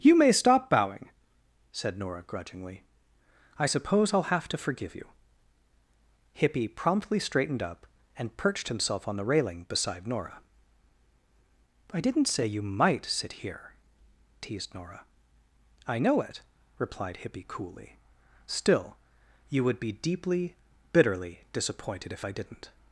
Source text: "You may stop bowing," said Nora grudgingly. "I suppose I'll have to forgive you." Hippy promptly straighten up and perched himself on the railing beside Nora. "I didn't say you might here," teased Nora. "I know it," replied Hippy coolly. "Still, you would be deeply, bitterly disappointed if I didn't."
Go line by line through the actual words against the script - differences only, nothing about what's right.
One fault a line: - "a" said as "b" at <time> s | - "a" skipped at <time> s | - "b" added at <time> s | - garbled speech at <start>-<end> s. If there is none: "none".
- "straighten" said as "straightened" at 7.2 s
- "sit" added at 13.0 s